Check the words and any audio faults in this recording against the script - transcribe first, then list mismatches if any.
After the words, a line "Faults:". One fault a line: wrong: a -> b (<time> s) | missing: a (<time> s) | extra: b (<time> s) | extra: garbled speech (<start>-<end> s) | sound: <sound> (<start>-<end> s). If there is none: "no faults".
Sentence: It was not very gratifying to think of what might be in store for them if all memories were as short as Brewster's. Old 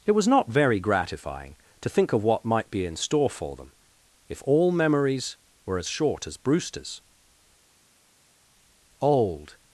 It was not very gratifying to think of what might be in store for them if all memories were as short as Brewster's. Old
Faults:
no faults